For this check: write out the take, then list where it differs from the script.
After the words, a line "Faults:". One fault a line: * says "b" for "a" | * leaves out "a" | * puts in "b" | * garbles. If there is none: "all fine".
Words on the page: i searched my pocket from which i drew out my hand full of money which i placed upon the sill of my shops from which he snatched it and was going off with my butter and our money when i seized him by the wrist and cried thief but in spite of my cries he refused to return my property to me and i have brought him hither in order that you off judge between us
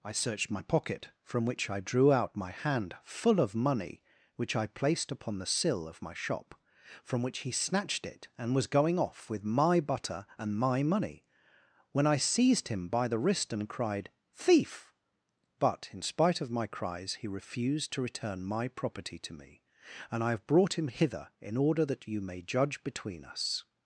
i searched my pocket from which i drew out my hand full of money which i placed upon the sill of my shop from which he snatched it and was going off with my butter and my money when i seized him by the wrist and cried thief but in spite of my cries he refused to return my property to me and i have brought him hither in order that you may judge between us
Faults:
* says "shop" for "shops"
* says "my" for "our"
* says "may" for "off"